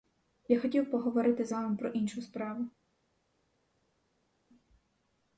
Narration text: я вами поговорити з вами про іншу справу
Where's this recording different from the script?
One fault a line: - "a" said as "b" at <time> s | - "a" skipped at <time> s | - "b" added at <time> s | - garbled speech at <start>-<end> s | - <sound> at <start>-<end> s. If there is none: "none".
- "вами" said as "хотів" at 0.6 s